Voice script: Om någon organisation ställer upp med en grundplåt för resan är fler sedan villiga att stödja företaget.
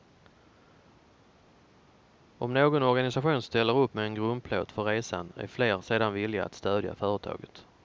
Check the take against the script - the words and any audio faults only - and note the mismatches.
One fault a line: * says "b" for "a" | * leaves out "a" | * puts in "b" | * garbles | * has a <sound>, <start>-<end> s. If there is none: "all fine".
all fine